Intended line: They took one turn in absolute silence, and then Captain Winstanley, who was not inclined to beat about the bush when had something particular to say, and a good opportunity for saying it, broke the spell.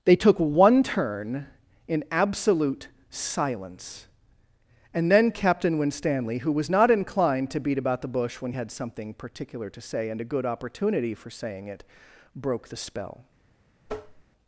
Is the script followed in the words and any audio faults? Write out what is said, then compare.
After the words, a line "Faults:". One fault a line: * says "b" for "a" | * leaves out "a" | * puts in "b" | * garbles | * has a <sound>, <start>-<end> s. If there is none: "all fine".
They took one turn in absolute silence, and then Captain Winstanley, who was not inclined to beat about the bush when had something particular to say, and a good opportunity for saying it, broke the spell.
Faults:
* has a tap, 13.9-14.2 s